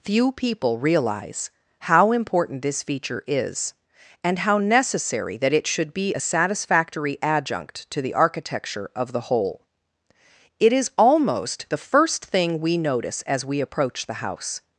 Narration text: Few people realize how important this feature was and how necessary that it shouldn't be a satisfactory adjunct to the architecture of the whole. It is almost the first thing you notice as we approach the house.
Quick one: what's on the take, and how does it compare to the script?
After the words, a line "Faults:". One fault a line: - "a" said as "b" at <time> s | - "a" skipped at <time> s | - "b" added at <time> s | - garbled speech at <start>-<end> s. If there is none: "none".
Few people realize how important this feature is and how necessary that it should be a satisfactory adjunct to the architecture of the whole. It is almost the first thing we notice as we approach the house.
Faults:
- "was" said as "is" at 3.3 s
- "shouldn't" said as "should" at 5.7 s
- "you" said as "we" at 12.6 s